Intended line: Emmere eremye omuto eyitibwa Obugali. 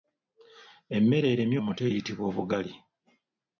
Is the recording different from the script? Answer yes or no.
no